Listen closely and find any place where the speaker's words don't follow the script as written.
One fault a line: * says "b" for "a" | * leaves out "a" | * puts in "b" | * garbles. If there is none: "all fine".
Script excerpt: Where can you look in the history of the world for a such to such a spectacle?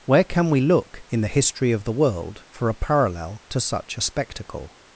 * says "we" for "you"
* says "parallel" for "such"